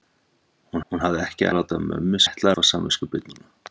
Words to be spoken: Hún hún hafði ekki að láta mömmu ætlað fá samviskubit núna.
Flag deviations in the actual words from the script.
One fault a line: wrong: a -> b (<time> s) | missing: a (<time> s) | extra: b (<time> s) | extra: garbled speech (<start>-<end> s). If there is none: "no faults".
no faults